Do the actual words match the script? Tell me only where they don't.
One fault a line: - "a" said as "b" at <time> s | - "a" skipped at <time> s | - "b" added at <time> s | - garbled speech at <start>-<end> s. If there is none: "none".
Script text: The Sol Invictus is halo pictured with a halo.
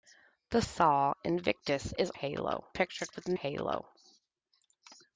none